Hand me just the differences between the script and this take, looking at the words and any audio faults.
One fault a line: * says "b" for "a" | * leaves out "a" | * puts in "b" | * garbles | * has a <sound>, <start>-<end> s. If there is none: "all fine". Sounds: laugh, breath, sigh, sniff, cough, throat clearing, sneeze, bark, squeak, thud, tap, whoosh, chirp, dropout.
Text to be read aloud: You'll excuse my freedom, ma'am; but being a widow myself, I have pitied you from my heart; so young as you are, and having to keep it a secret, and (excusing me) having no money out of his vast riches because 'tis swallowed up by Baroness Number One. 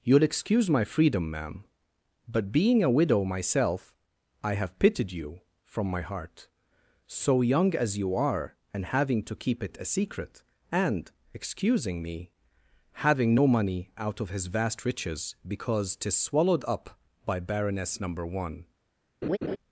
* has a laugh, 19.2-19.6 s